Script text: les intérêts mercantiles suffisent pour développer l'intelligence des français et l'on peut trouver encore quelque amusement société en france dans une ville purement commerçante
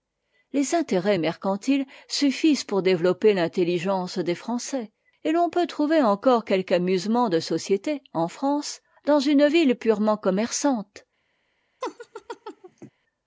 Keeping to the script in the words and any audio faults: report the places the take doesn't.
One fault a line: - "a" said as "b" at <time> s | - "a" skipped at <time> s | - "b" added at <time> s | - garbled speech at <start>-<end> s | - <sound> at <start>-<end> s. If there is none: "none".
- "de" added at 7.3 s
- laugh at 11.8-12.9 s